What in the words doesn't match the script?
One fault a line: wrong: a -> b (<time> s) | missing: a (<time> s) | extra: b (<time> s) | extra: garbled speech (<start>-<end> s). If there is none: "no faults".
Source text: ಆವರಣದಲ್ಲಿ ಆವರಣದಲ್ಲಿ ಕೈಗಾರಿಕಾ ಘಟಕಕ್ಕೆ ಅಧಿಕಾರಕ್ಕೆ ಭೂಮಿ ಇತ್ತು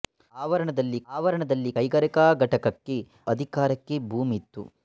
no faults